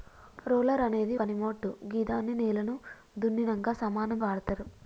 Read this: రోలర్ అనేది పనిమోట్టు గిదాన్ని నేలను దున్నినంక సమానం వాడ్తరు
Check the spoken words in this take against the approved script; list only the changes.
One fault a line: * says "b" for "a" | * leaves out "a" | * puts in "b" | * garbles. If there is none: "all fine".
all fine